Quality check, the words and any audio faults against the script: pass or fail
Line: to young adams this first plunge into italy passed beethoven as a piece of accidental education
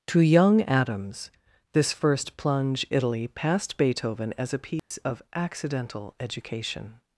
fail